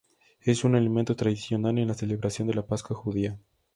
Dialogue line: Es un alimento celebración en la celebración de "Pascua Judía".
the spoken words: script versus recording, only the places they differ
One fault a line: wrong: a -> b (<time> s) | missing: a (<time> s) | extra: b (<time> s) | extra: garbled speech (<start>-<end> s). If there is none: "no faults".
wrong: celebración -> tradicional (1.1 s)
extra: la (2.5 s)